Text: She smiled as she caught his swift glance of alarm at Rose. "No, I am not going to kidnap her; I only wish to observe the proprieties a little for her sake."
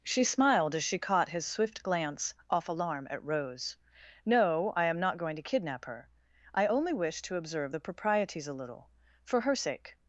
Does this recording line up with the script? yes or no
no